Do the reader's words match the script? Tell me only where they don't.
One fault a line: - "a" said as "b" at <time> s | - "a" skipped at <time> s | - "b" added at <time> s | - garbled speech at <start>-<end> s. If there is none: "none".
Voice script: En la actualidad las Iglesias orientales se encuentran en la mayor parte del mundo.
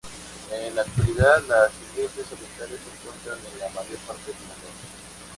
none